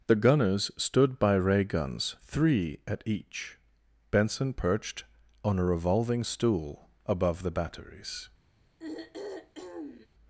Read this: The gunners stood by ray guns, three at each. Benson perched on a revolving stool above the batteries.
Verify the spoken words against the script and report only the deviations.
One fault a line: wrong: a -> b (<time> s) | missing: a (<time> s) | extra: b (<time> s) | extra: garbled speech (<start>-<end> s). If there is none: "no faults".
no faults